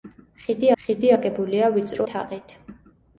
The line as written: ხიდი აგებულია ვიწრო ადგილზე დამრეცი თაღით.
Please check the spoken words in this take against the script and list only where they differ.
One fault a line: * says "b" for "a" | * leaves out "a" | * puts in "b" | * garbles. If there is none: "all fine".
* puts in "ხიდი"
* leaves out "ადგილზე დამრეცი"